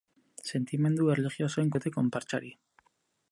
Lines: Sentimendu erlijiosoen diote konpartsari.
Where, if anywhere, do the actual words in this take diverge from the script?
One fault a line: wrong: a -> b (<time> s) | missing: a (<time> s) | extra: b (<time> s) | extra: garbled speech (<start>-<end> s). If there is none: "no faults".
no faults